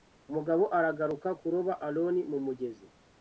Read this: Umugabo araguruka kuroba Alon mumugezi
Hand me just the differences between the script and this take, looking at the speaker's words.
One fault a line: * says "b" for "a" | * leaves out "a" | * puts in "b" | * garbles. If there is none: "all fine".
all fine